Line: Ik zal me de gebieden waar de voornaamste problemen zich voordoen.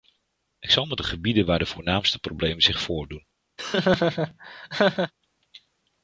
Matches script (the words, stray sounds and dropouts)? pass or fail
fail